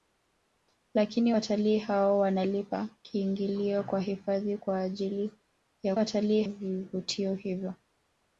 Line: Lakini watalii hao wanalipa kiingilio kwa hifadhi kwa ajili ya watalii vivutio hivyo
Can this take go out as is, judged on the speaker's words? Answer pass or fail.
pass